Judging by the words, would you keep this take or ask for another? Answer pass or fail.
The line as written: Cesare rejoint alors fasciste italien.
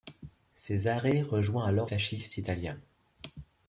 pass